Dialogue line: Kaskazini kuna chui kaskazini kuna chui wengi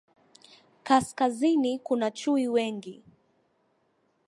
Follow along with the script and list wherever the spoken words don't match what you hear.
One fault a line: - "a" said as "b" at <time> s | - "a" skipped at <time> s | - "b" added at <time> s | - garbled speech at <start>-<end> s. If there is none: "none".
- "kaskazini kuna chui" skipped at 2.5 s